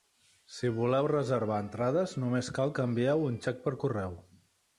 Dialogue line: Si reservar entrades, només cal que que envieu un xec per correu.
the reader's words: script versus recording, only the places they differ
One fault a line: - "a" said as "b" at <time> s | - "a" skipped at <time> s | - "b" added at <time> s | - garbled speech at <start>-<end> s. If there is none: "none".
- "voleu" added at 0.8 s
- "que" skipped at 2.9 s